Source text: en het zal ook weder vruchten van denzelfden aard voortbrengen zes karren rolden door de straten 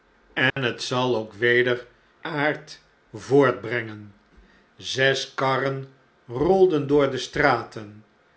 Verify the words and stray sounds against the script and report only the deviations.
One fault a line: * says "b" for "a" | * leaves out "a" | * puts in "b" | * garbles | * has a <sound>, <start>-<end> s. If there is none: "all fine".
* has a dropout, 0.5-0.6 s
* leaves out "vruchten van denzelfden"